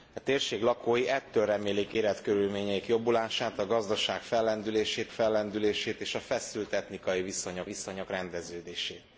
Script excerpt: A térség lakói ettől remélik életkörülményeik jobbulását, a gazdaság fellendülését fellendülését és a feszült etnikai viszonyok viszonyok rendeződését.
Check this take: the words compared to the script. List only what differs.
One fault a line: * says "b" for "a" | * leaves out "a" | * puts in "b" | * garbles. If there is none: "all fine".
all fine